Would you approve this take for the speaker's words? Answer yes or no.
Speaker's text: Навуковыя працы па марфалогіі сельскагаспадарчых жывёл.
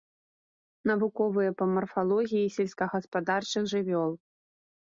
no